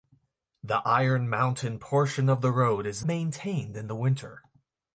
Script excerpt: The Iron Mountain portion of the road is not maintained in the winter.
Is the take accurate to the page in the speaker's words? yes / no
no